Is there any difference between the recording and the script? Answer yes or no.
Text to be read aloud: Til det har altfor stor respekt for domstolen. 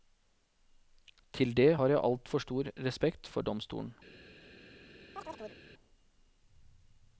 yes